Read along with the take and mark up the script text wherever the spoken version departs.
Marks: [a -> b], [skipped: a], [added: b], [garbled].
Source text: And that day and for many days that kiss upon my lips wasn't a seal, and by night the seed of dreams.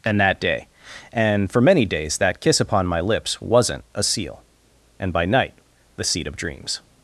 And that day and for many days that kiss upon my lips wasn't a seal, and by night the seed of dreams.